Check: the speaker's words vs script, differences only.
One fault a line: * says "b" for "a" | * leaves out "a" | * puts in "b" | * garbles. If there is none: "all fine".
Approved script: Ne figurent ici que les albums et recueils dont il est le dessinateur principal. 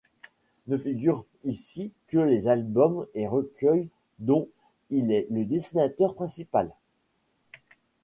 all fine